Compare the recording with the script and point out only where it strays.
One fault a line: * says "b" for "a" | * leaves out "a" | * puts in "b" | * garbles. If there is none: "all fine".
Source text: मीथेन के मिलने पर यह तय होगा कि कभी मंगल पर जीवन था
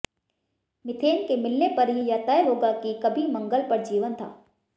* puts in "ही"